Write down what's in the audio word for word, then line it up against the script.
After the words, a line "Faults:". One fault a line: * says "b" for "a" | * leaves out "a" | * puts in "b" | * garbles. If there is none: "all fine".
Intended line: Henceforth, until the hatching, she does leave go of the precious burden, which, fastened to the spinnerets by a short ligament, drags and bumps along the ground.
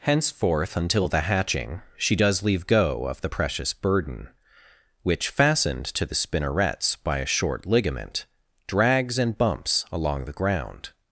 Henceforth, until the hatching, she does leave go of the precious burden, which, fastened to the spinnerets by a short ligament, drags and bumps along the ground.
Faults:
all fine